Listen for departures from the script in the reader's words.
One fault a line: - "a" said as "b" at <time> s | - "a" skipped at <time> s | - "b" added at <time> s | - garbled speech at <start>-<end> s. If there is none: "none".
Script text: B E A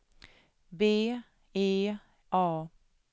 none